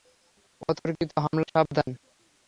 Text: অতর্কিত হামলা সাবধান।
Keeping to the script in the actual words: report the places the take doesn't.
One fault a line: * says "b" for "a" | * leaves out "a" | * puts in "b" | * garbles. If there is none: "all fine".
all fine